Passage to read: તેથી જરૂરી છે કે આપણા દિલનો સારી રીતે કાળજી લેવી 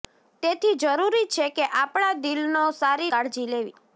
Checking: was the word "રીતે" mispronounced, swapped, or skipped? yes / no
yes